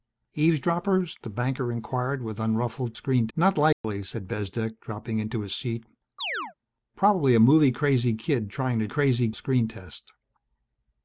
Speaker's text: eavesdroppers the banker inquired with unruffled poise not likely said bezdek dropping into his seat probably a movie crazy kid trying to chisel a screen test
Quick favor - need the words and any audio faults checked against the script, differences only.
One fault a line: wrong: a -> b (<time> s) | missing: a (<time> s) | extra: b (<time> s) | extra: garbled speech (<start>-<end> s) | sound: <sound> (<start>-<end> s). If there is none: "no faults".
wrong: poise -> screen (3.0 s)
sound: dropout (3.7-3.8 s)
sound: chirp (6.2-6.5 s)
wrong: chisel -> crazy (8.9 s)